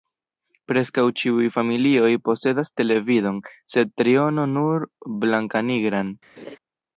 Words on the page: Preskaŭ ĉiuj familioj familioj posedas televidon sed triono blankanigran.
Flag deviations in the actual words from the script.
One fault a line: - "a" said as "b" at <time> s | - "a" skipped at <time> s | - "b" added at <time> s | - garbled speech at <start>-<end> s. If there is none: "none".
- "familioj" skipped at 2.1 s
- "nur" added at 4.5 s